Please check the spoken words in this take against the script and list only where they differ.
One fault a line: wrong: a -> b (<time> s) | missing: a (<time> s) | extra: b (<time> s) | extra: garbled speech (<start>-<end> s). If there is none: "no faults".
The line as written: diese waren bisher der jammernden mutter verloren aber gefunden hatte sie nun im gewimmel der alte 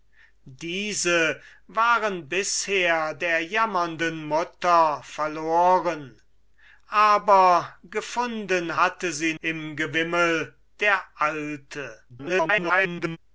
missing: nun (9.3 s)
extra: garbled speech (12.1-13.2 s)